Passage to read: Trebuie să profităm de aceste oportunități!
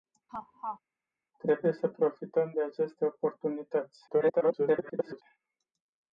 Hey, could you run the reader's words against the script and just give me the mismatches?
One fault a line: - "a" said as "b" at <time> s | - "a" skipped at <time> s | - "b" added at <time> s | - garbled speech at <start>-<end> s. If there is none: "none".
- garbled speech at 4.1-5.2 s